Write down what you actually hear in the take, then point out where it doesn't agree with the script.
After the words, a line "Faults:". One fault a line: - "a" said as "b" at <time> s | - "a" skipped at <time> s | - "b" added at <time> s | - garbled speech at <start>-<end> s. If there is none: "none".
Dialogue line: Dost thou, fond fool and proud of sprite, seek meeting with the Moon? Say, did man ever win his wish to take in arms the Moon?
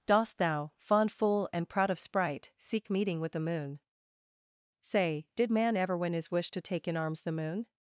Dost thou, fond fool and proud of sprite, seek meeting with the Moon? Say, did man ever win his wish to take in arms the Moon?
Faults:
none